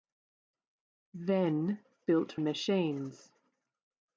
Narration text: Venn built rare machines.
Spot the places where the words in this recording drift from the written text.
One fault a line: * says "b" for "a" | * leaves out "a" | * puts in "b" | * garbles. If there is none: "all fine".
* leaves out "rare"